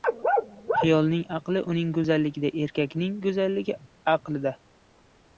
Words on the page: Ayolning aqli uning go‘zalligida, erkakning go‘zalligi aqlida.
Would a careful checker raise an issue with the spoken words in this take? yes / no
no